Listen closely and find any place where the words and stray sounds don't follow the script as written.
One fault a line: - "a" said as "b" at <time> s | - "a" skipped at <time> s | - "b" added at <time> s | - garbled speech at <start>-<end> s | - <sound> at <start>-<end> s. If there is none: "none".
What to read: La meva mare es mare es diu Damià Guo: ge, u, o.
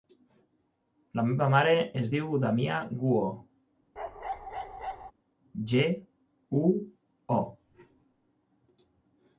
- "mare es" skipped at 2.1 s
- bark at 4.0-5.1 s